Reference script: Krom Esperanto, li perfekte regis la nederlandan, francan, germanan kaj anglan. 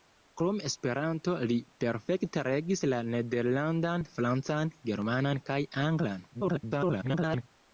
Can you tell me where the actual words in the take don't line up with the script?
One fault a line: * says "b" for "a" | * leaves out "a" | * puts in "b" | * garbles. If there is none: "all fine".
* garbles